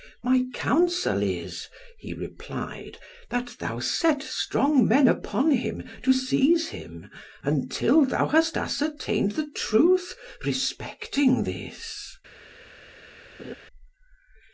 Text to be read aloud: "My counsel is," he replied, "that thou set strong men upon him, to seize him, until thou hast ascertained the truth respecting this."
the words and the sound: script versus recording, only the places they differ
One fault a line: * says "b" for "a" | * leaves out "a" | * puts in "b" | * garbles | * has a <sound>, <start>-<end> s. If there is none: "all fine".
* has a laugh, 13.4-13.5 s